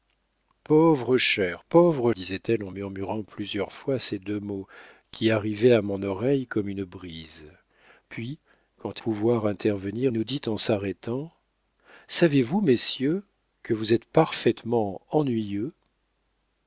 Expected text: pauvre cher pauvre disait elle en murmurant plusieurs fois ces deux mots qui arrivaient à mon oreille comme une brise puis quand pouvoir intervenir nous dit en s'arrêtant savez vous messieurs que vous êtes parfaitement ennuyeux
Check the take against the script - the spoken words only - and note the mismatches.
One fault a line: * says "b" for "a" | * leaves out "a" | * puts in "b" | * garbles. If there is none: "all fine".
all fine